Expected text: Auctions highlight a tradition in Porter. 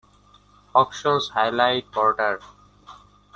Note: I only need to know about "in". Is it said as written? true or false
false